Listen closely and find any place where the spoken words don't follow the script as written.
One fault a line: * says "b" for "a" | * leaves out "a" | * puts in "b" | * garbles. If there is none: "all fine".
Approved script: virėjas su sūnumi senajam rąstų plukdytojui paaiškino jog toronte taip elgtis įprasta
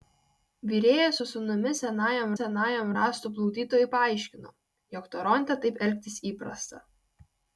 * puts in "senajam"